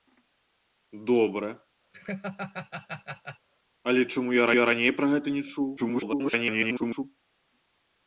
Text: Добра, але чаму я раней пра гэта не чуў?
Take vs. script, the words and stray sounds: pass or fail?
fail